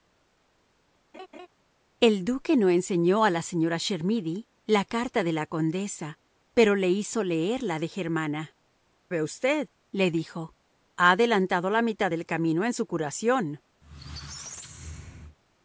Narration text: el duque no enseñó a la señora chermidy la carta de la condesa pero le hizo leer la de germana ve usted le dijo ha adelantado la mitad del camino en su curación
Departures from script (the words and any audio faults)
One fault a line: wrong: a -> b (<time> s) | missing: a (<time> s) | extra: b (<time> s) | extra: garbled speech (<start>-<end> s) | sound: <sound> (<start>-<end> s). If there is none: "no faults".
sound: laugh (1.1-1.5 s)
sound: squeak (13.8-15.4 s)